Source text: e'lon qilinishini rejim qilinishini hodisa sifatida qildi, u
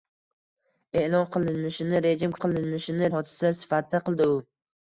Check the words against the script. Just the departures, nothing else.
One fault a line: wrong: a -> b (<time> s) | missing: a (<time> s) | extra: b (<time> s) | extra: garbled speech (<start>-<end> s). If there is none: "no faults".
no faults